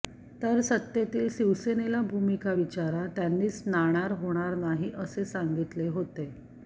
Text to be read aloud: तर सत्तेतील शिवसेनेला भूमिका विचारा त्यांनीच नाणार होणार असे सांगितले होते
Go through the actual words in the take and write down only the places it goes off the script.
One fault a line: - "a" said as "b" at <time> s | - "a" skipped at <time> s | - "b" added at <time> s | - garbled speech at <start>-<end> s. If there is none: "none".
- "नाही" added at 4.6 s